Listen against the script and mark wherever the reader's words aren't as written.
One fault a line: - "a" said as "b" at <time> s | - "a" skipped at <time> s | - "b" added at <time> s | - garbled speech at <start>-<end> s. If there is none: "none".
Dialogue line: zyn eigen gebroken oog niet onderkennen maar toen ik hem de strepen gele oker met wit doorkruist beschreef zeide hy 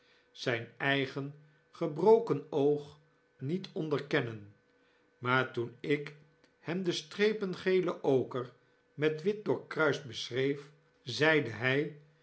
none